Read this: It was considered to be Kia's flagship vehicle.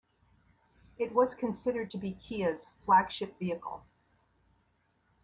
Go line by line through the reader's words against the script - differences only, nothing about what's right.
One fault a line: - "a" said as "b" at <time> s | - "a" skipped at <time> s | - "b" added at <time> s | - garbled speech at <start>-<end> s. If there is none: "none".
none